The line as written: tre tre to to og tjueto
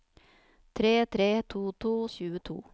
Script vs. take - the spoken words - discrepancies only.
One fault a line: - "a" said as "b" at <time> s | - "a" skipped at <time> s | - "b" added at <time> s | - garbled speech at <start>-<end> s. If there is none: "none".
none